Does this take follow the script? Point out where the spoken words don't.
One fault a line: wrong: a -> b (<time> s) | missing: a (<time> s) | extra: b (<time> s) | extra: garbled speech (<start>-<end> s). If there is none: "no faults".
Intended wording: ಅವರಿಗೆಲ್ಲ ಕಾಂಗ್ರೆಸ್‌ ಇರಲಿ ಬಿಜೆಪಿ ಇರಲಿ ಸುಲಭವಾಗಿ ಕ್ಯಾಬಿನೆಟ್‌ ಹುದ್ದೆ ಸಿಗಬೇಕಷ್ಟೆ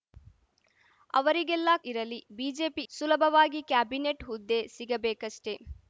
missing: ಕಾಂಗ್ರೆಸ್ (1.7 s)
missing: ಇರಲಿ (2.9 s)